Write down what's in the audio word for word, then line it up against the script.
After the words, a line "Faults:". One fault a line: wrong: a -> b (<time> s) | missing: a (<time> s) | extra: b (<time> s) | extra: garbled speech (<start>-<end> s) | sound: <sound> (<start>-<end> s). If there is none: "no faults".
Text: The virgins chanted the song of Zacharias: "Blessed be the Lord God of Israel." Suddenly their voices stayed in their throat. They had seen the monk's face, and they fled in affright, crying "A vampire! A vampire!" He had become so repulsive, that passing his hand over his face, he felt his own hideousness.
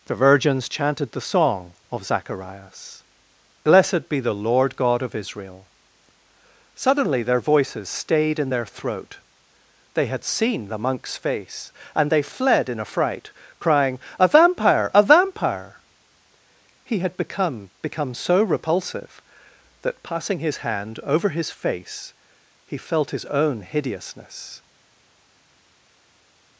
The virgins chanted the song of Zacharias: "Blessed be the Lord God of Israel." Suddenly their voices stayed in their throat. They had seen the monk's face, and they fled in affright, crying "A vampire! A vampire!" He had become become so repulsive, that passing his hand over his face, he felt his own hideousness.
Faults:
extra: become (17.8 s)